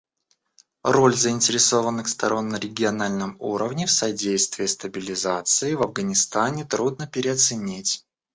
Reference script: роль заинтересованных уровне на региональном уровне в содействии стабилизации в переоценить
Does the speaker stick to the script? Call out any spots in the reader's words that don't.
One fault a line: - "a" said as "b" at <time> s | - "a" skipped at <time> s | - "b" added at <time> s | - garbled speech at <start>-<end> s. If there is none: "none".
- "уровне" said as "сторон" at 2.1 s
- "афганистане трудно" added at 5.8 s